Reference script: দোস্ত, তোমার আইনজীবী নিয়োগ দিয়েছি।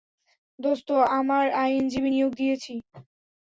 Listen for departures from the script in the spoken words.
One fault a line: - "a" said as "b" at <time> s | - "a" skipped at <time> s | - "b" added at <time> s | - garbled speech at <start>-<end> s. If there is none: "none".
- "তোমার" said as "আমার" at 1.2 s